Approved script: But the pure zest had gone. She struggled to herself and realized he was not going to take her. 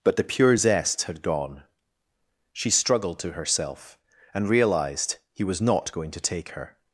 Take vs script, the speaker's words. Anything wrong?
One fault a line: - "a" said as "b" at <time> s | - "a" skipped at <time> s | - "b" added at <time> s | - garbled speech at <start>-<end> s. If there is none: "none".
none